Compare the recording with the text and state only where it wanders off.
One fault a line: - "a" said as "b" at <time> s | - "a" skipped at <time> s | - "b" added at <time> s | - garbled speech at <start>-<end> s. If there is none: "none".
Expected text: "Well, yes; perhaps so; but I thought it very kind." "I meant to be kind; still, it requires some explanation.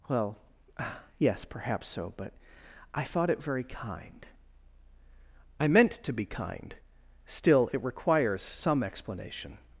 none